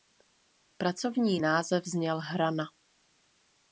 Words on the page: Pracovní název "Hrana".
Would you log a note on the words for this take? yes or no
yes